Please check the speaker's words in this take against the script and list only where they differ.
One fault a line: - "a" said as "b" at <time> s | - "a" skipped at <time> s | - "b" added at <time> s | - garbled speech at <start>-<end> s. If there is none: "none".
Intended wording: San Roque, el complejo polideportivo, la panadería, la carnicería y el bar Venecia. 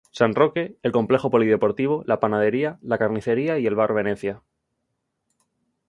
none